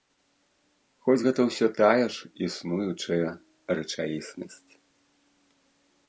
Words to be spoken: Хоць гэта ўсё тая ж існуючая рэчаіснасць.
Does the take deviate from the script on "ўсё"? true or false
false